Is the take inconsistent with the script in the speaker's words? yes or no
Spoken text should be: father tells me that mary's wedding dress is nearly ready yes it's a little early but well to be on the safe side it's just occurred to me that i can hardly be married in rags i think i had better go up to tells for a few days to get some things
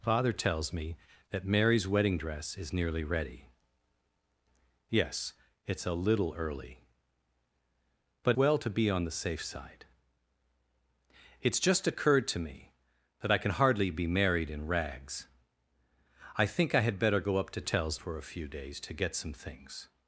no